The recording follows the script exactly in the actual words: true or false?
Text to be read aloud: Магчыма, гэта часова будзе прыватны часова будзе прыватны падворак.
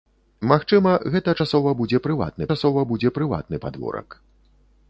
true